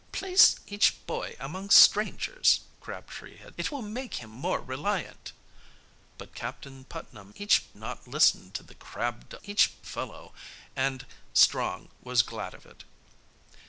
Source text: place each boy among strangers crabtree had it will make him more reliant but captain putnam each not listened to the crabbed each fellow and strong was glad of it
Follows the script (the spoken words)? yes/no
yes